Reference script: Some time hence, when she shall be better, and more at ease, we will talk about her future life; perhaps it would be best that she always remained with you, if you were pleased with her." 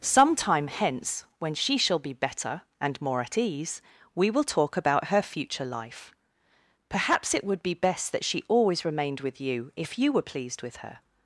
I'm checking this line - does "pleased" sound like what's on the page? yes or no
yes